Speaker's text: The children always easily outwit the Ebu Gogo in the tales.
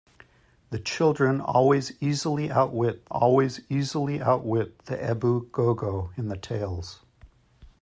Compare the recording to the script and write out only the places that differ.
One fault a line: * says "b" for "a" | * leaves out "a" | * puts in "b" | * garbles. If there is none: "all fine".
* puts in "always easily outwit"